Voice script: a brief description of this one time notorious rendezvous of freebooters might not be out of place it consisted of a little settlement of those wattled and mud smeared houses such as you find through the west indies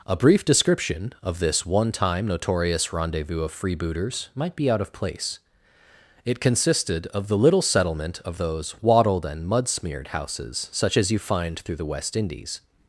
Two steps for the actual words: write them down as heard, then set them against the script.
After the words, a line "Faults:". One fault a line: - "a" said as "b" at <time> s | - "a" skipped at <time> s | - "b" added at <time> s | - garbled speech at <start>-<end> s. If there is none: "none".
a brief description of this one time notorious rendezvous of freebooters might be out of place it consisted of the little settlement of those wattled and mud smeared houses such as you find through the west indies
Faults:
- "not" skipped at 4.5 s
- "a" said as "the" at 7.3 s